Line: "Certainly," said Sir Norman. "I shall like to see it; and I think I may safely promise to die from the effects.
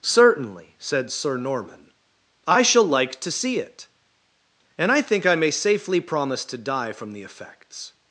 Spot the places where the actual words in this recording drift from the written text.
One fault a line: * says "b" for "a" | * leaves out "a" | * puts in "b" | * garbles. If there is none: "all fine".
all fine